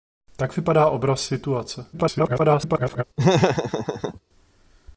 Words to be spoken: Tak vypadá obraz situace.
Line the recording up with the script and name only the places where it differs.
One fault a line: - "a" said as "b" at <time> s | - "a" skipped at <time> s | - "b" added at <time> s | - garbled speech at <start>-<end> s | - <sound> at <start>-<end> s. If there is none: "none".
- garbled speech at 1.9-3.0 s
- laugh at 3.2-4.2 s